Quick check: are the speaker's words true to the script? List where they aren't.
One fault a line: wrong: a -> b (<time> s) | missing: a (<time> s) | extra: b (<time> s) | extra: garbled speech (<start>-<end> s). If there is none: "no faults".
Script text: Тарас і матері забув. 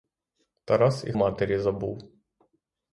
no faults